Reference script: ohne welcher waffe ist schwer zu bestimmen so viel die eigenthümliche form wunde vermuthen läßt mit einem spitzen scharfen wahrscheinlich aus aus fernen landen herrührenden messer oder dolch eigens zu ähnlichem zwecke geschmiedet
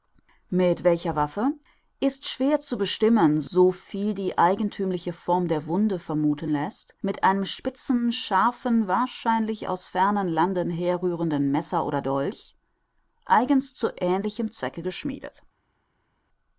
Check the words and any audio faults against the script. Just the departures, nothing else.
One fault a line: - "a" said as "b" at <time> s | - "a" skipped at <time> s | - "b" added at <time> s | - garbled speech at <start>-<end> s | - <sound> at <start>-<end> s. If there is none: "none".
- "ohne" said as "mit" at 0.5 s
- "der" added at 5.5 s
- "aus" skipped at 9.9 s